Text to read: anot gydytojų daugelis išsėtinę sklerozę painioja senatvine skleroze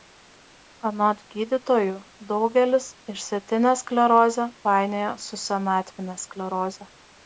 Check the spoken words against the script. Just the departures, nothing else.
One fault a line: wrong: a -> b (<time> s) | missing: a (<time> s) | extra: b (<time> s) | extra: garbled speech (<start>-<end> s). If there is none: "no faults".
extra: su (5.3 s)